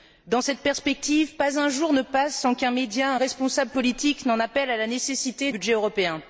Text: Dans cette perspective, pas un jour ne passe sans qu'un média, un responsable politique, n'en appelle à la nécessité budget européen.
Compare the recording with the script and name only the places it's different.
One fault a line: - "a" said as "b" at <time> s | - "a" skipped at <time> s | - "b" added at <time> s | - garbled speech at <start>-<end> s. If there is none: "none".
none